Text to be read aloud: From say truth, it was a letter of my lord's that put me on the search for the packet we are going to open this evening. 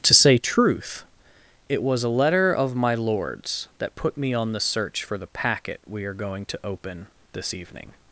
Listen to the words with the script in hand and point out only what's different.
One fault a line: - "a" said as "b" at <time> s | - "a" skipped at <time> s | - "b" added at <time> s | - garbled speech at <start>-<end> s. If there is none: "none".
- "From" said as "To" at 0.0 s